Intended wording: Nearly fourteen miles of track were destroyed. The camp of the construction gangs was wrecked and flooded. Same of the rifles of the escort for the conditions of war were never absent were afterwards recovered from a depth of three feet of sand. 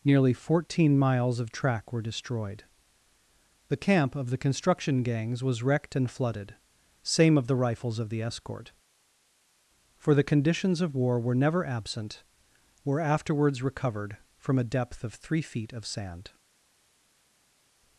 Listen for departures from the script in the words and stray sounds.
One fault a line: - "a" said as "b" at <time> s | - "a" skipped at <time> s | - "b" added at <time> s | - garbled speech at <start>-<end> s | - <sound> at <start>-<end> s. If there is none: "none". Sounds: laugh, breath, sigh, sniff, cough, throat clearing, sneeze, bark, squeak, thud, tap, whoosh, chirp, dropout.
none